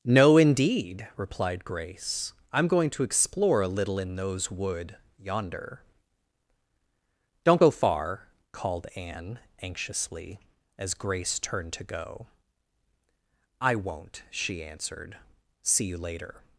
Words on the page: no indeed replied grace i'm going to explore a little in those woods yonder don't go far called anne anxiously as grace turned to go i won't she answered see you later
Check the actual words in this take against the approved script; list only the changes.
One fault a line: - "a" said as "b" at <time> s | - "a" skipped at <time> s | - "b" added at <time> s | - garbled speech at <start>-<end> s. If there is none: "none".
- "woods" said as "wood" at 4.5 s